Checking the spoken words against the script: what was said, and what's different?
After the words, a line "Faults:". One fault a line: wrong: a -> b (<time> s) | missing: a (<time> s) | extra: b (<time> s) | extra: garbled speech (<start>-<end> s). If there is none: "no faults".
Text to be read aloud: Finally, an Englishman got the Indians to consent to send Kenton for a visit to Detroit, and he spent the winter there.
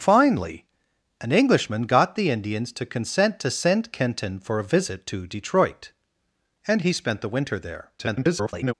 Finally, an Englishman got the Indians to consent to send Kenton for a visit to Detroit, and he spent the winter there. [garbled]
Faults:
extra: garbled speech (8.0-8.7 s)